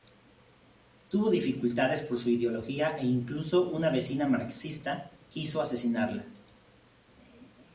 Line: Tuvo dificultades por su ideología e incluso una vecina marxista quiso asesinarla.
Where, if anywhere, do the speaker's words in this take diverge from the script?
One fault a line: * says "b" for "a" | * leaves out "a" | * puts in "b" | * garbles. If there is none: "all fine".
all fine